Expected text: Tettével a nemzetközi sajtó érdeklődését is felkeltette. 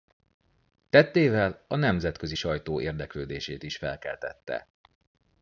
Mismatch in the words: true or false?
false